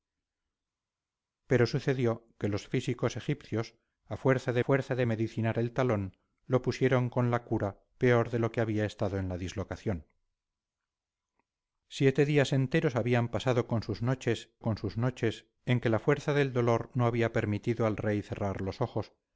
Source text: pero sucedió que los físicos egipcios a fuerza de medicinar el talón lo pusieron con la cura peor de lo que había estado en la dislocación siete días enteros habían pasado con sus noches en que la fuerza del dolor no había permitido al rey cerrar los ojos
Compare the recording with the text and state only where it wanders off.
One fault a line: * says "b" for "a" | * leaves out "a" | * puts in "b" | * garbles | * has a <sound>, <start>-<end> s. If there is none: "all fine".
* puts in "fuerza de"
* puts in "con sus noches"